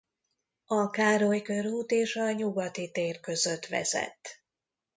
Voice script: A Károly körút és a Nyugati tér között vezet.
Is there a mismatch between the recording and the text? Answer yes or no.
no